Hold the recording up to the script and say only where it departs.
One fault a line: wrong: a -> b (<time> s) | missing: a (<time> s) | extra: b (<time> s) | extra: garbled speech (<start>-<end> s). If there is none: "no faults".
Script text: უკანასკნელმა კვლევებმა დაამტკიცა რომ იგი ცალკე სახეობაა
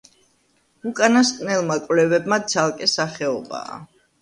missing: დაამტკიცა რომ იგი (2.4 s)